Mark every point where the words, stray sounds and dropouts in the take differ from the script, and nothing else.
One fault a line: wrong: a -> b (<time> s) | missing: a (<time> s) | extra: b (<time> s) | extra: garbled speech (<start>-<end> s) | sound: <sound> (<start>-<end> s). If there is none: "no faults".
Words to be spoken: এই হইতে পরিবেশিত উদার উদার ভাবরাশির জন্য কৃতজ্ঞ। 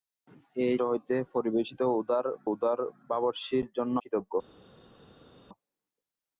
no faults